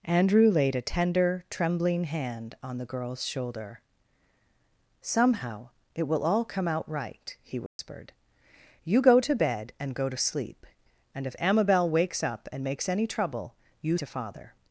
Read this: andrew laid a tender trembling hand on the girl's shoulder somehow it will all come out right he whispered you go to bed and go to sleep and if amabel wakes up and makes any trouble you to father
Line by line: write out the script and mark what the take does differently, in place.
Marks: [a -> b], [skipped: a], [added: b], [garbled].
andrew laid a tender trembling hand on the girl's shoulder somehow it will all come out right he whispered you go to bed and go to sleep and if amabel wakes up and makes any trouble you to father